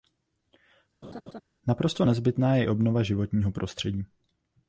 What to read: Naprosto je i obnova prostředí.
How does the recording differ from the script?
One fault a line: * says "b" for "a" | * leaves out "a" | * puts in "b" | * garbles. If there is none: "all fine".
* puts in "nezbytná"
* puts in "životního"